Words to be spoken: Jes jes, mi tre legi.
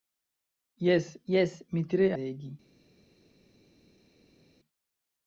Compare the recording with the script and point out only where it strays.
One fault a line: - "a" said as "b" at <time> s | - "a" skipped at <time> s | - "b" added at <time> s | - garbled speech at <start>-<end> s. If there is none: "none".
none